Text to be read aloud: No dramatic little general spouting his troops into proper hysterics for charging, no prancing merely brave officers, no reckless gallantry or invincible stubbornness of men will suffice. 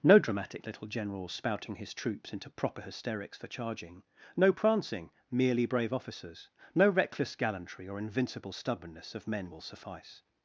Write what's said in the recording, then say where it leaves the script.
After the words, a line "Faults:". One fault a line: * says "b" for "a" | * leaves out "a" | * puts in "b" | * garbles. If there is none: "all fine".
No dramatic little general spouting his troops into proper hysterics for charging, no prancing merely brave officers, no reckless gallantry or invincible stubbornness of men will suffice.
Faults:
all fine